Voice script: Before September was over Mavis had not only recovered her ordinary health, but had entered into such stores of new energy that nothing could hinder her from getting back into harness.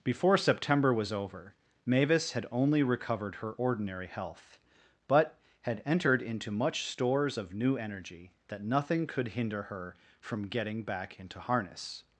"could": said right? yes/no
yes